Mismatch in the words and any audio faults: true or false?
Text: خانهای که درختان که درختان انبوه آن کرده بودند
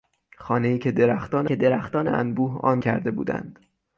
false